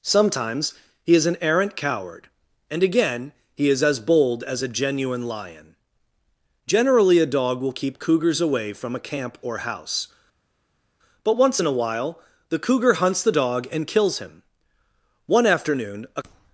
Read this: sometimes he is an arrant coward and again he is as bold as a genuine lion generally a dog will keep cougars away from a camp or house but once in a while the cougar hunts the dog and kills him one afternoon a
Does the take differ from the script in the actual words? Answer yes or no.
no